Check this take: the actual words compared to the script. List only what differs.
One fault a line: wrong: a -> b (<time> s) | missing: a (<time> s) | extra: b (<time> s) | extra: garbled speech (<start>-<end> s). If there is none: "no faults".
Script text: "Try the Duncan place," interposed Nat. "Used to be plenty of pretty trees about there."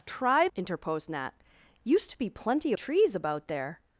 missing: the Duncan place (0.5 s)
missing: of pretty (2.7 s)